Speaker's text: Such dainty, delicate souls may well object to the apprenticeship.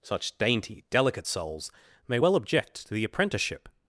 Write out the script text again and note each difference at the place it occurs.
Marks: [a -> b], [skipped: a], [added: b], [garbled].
Such dainty, delicate souls may well object to the apprenticeship.